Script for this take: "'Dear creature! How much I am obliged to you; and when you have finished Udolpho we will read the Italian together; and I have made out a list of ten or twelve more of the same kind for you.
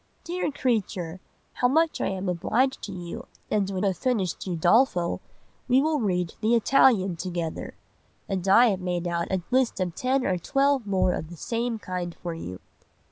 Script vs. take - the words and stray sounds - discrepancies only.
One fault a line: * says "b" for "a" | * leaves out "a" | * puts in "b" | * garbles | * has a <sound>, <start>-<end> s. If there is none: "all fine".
* leaves out "you"